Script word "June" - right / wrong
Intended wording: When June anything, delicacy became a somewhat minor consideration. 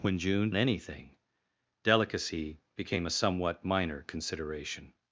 right